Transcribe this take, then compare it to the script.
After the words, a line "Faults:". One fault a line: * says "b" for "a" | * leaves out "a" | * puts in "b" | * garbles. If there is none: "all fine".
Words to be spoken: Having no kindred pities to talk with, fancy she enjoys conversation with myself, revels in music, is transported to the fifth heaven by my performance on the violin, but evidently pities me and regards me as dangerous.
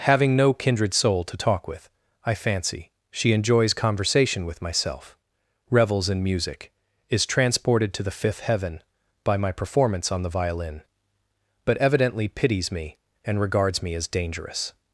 Having no kindred soul to talk with, I fancy she enjoys conversation with myself, revels in music, is transported to the fifth heaven by my performance on the violin, but evidently pities me and regards me as dangerous.
Faults:
* says "soul" for "pities"
* puts in "I"